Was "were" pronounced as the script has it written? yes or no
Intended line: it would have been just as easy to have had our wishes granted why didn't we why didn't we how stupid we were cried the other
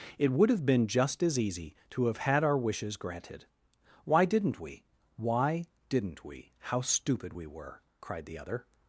yes